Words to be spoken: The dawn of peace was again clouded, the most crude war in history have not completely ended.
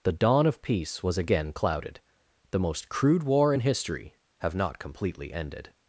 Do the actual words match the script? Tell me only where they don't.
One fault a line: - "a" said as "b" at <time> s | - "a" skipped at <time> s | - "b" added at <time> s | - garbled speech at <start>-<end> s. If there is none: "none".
none